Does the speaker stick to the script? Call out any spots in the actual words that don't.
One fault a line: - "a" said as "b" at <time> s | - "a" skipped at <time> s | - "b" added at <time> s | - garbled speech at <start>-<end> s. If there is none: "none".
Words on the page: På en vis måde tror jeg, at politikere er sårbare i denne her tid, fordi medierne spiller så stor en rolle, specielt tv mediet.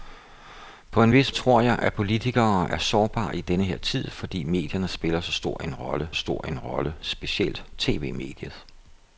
- "måde" skipped at 1.3 s
- "stor en rolle" added at 6.1 s